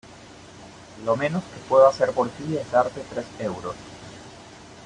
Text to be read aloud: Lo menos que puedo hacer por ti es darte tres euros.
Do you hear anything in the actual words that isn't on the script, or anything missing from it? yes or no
no